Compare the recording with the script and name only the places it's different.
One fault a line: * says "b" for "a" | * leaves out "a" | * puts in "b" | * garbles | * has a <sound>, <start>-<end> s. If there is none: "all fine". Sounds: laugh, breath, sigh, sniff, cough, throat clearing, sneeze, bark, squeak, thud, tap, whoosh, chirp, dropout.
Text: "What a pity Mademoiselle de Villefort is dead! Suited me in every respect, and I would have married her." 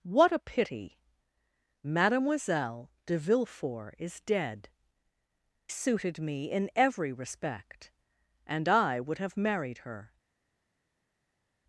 all fine